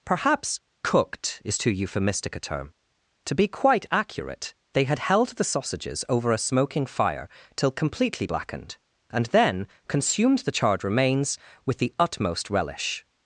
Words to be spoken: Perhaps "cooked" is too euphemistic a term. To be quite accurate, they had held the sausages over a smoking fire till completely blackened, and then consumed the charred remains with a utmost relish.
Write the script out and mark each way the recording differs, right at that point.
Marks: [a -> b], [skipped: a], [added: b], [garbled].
Perhaps "cooked" is too euphemistic a term. To be quite accurate, they had held the sausages over a smoking fire till completely blackened, and then consumed the charred remains with [a -> the] utmost relish.